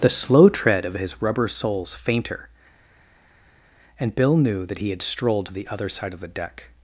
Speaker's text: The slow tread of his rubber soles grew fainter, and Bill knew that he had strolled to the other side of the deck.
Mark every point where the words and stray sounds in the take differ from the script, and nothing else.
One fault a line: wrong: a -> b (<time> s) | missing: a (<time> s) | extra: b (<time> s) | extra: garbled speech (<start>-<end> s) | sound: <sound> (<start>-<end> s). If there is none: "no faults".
missing: grew (1.9 s)